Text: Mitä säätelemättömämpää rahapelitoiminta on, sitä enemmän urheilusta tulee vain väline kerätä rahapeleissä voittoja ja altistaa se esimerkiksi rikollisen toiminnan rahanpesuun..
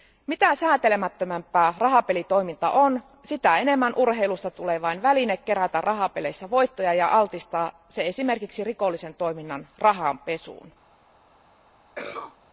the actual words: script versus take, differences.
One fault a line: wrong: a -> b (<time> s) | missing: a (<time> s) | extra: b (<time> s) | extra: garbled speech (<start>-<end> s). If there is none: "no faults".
no faults